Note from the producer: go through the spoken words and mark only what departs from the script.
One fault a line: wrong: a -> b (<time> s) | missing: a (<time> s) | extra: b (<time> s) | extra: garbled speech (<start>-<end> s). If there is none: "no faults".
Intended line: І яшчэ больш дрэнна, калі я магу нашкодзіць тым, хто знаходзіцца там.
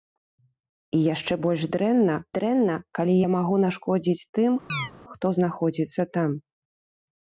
extra: дрэнна (2.4 s)